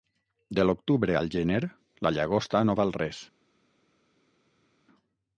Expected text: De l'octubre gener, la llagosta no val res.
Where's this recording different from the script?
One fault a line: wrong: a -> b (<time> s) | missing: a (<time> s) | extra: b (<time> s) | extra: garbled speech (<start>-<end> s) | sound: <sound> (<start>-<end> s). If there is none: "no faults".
extra: al (1.2 s)